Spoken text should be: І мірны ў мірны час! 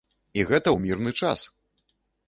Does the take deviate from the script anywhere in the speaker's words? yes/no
yes